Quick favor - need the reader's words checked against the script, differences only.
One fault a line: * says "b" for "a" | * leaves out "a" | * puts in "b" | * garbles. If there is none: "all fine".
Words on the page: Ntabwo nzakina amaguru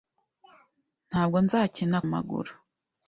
all fine